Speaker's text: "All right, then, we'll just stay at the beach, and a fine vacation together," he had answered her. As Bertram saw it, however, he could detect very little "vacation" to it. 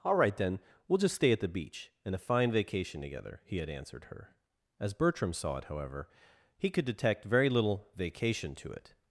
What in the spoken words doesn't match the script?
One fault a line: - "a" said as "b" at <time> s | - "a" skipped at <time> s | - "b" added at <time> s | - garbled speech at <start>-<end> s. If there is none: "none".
none